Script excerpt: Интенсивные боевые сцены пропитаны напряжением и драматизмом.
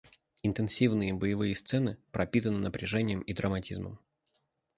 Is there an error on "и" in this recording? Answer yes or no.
no